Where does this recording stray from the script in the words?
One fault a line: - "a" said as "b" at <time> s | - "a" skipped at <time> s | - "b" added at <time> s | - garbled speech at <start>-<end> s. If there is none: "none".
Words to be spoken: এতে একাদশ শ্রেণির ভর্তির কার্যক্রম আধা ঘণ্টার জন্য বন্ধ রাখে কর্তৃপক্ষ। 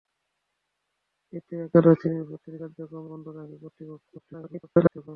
- "আধা ঘণ্টার জন্য" skipped at 3.0 s
- garbled speech at 4.2-5.1 s